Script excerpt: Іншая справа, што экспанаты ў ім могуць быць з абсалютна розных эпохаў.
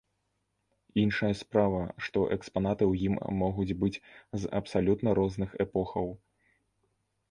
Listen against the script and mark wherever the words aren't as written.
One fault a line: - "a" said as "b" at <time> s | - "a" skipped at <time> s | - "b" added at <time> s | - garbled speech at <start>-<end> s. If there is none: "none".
none